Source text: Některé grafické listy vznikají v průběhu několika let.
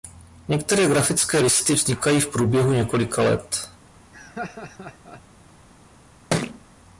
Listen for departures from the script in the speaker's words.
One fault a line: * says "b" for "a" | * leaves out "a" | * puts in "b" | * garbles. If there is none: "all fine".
all fine